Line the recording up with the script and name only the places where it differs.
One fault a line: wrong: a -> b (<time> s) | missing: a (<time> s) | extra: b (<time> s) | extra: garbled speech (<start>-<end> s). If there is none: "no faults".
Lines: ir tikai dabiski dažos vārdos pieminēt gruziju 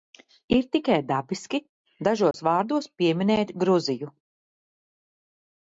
no faults